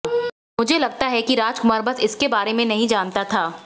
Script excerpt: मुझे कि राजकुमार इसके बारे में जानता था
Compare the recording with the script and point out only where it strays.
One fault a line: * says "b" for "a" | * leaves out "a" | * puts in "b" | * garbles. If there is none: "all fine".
* puts in "लगता है"
* puts in "बस"
* puts in "नहीं"